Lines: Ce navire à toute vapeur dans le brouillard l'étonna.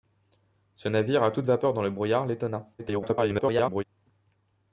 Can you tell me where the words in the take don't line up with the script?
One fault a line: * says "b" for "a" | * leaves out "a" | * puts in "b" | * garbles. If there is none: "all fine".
* garbles